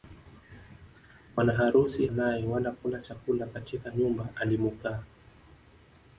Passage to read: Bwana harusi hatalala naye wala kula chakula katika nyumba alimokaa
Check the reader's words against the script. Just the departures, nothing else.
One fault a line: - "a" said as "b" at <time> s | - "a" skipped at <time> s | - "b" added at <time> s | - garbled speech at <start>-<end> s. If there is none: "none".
- "hatalala" skipped at 2.1 s